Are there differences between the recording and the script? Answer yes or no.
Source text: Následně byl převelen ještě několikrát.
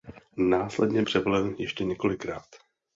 yes